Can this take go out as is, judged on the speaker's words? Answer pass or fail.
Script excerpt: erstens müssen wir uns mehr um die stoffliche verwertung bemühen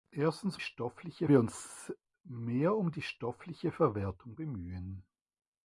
fail